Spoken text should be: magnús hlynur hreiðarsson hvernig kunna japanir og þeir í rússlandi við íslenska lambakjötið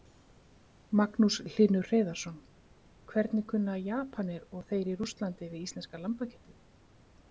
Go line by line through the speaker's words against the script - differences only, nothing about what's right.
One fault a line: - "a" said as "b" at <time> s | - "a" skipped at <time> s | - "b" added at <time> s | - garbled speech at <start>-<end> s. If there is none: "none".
none